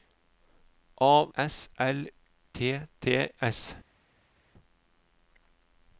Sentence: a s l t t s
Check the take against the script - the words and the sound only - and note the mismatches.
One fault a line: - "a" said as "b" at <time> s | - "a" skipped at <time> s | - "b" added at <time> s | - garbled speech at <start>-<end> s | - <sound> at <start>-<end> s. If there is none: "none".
none